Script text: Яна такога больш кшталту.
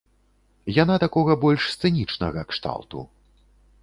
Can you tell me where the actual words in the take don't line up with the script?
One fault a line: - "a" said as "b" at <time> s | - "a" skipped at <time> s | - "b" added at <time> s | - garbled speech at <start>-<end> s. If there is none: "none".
- "сцэнічнага" added at 1.7 s